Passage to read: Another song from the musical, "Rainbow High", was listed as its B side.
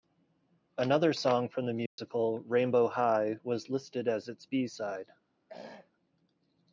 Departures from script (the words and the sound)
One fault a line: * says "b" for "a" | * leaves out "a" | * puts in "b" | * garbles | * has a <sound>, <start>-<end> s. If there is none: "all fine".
* has a dropout, 1.9-2.0 s
* has a throat clearing, 5.5-5.9 s